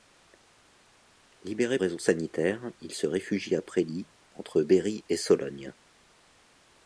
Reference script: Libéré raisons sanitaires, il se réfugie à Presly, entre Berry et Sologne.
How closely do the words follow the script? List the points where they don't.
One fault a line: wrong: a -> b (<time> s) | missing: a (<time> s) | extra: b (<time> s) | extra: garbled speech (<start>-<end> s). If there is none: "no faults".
no faults